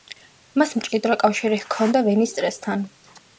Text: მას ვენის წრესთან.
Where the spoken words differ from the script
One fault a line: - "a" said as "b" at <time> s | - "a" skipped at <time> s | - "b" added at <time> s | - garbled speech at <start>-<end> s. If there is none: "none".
- "მჭიდრო კავშირი ჰქონდა" added at 0.8 s